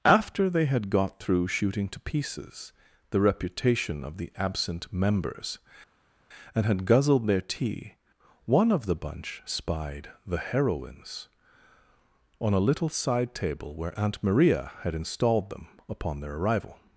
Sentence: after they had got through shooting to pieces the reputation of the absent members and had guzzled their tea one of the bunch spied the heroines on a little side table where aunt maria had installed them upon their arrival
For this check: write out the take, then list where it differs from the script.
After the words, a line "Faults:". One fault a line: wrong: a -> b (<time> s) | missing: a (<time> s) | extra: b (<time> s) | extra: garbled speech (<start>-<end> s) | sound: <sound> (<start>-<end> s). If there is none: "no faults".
after they had got through shooting to pieces the reputation of the absent members and had guzzled their tea one of the bunch spied the heroines on a little side table where aunt maria had installed them upon their arrival
Faults:
no faults